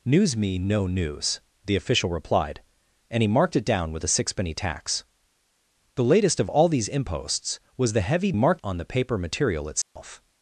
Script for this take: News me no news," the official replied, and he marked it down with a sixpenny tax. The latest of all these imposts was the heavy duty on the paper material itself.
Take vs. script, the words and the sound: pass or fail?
fail